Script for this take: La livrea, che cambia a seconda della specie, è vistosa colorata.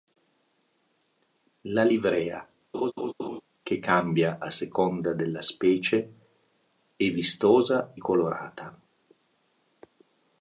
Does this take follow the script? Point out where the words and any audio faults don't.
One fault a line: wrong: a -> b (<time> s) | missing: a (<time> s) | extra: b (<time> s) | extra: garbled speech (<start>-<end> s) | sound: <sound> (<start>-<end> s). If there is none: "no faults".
sound: laugh (2.7-3.4 s)